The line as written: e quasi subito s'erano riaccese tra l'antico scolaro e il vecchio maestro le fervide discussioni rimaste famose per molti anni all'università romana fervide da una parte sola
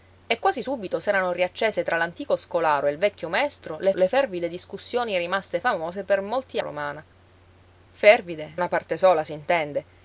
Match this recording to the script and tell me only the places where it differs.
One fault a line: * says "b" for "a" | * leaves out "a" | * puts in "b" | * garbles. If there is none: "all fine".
* puts in "le"
* leaves out "anni all'università"
* leaves out "da"